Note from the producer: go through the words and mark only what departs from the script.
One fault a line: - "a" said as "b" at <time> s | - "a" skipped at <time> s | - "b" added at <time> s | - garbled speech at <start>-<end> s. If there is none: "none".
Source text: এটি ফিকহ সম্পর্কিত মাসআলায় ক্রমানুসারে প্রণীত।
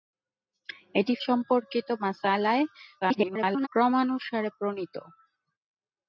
- "ফিকহ" skipped at 1.1 s
- garbled speech at 3.0-3.7 s